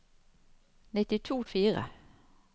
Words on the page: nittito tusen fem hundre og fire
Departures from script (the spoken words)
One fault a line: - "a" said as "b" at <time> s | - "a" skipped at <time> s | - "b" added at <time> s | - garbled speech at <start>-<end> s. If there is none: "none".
- "tusen fem hundre" skipped at 1.4 s